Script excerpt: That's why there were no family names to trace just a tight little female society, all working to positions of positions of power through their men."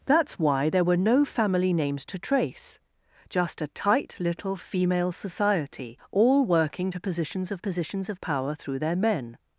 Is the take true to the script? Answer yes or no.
yes